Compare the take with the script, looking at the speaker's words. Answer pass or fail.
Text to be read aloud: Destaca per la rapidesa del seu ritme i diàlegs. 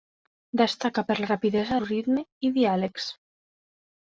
fail